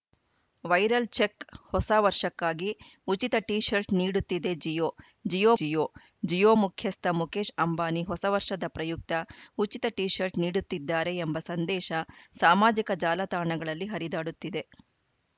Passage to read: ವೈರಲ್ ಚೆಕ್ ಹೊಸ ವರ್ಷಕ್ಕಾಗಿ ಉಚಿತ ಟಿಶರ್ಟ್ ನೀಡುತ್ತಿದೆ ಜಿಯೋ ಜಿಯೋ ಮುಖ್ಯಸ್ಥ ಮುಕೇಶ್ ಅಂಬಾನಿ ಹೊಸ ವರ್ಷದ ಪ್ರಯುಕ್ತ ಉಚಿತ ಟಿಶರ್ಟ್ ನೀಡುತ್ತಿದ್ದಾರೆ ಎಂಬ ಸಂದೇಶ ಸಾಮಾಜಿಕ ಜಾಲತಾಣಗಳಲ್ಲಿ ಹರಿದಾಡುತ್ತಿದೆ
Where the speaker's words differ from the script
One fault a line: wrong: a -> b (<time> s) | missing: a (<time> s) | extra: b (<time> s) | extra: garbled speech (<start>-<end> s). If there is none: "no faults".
extra: ಜಿಯೋ ಜಿಯೋ (5.6 s)